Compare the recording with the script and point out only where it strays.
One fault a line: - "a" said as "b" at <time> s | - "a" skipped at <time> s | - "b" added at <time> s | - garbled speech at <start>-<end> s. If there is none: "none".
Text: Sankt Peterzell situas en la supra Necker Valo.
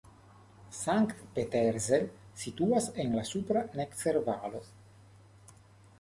none